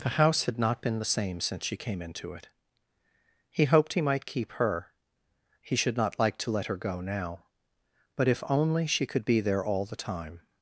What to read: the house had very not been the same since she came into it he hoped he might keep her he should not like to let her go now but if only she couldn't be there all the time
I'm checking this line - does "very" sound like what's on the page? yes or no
no